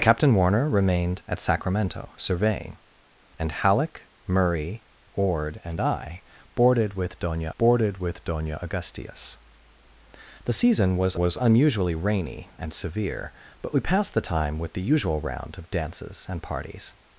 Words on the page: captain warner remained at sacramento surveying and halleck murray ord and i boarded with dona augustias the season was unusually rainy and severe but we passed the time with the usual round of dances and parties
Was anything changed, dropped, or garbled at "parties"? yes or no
no